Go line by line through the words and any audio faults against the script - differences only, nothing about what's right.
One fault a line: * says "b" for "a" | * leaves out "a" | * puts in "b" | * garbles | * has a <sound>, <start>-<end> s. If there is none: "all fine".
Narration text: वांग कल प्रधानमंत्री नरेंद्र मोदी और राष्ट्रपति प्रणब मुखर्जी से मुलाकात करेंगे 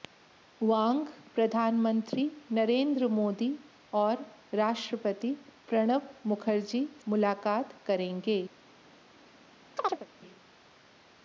* leaves out "कल"
* leaves out "से"
* has a chirp, 9.8-10.1 s